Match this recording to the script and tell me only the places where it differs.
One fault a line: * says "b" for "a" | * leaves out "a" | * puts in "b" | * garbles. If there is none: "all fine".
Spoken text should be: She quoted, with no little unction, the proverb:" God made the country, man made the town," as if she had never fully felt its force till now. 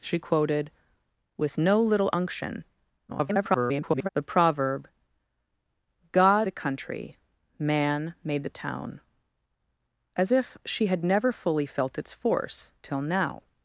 * garbles
* leaves out "made"